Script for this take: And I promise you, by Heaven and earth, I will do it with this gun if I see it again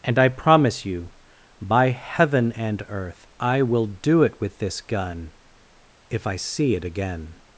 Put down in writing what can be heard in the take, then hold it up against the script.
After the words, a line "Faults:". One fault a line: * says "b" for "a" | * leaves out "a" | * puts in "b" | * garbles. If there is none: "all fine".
And I promise you, by Heaven and earth, I will do it with this gun if I see it again
Faults:
all fine